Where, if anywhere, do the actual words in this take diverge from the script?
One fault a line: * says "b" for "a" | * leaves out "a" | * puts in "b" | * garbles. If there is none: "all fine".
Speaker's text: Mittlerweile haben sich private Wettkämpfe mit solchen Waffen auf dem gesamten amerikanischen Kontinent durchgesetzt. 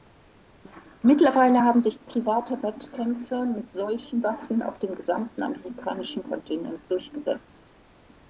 all fine